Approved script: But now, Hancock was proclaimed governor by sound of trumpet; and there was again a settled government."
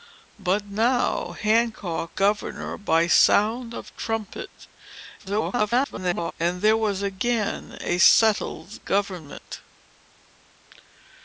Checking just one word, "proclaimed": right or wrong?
wrong